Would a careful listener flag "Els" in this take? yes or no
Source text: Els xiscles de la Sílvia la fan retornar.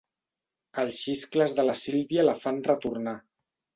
no